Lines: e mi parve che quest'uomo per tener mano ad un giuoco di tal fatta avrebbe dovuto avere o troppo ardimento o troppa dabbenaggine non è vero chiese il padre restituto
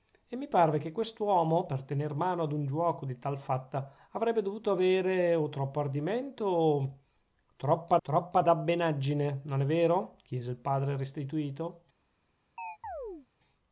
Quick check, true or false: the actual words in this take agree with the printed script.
false